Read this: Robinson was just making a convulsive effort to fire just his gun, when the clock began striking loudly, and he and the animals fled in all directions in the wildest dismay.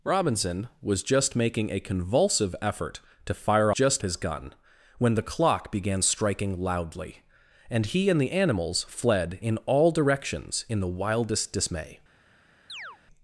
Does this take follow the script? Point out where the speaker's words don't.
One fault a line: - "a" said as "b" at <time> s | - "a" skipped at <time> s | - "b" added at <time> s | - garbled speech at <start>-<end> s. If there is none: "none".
none